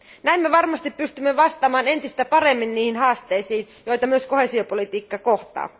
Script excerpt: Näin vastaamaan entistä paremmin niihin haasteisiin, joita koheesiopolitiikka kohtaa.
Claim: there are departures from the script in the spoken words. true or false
true